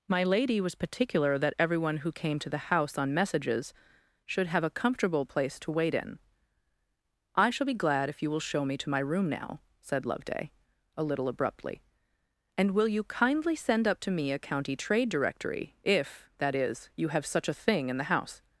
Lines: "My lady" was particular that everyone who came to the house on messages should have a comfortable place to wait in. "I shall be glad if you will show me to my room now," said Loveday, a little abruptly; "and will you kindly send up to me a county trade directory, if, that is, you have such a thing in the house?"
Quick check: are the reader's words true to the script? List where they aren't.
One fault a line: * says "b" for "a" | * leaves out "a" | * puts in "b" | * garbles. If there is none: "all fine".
all fine